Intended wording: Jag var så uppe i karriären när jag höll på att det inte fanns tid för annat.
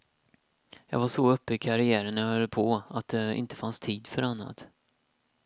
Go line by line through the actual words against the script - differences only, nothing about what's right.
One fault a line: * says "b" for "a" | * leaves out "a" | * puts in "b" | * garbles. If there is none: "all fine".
all fine